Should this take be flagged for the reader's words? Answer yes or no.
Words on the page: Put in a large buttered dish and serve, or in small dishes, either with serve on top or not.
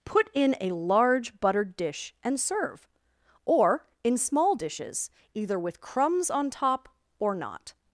yes